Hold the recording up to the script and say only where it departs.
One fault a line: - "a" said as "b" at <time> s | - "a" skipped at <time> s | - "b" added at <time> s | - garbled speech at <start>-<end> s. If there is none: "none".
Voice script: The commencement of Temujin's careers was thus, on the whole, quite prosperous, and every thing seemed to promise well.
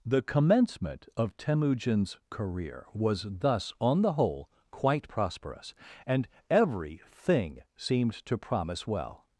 - "careers" said as "career" at 2.3 s